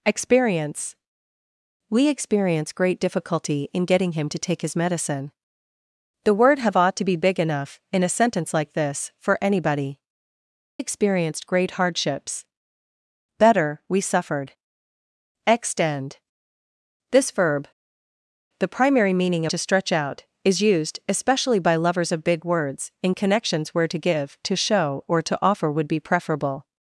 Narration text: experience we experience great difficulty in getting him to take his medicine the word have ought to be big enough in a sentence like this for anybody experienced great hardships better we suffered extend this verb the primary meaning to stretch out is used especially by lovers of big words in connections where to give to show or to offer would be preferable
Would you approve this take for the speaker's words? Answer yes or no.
yes